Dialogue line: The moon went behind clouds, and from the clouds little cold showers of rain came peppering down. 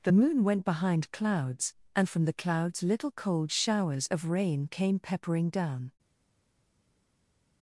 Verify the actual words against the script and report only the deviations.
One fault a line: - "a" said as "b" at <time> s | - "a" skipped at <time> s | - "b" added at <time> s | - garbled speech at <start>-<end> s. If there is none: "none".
none